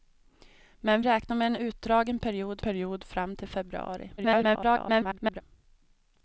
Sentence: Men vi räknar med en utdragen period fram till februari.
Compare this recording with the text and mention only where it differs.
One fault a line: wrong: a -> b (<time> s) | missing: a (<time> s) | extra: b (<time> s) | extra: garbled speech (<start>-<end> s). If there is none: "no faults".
missing: vi (1.0 s)
extra: period (2.6 s)
extra: garbled speech (4.2-5.4 s)